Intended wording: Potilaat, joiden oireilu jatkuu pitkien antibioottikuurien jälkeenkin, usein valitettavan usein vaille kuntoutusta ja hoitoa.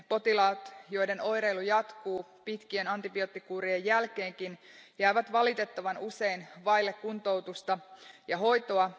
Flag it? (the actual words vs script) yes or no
yes